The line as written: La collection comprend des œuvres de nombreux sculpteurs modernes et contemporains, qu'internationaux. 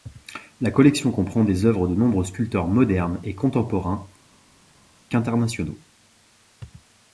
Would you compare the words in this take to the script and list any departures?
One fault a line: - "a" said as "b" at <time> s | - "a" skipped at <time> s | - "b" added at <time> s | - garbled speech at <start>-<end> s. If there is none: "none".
none